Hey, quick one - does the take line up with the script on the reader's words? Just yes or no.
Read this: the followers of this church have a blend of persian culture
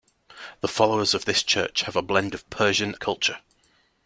yes